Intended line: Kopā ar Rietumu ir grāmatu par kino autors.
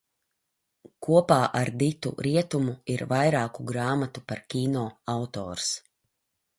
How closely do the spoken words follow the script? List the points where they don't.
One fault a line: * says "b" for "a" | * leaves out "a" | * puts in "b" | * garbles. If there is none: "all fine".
* puts in "Ditu"
* puts in "vairāku"